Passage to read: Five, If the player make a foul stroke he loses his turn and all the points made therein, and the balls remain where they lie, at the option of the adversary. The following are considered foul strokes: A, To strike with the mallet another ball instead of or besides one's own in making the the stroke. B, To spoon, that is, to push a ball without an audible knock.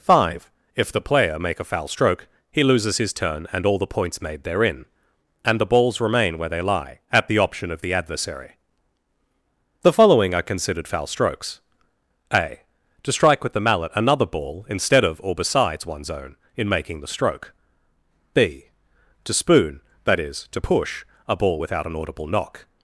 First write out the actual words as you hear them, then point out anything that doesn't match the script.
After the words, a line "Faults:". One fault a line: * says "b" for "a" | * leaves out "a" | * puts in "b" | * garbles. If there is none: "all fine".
Five, If the player make a foul stroke he loses his turn and all the points made therein, and the balls remain where they lie, at the option of the adversary. The following are considered foul strokes: A, To strike with the mallet another ball instead of or besides one's own in making the stroke. B, To spoon, that is, to push a ball without an audible knock.
Faults:
* leaves out "the"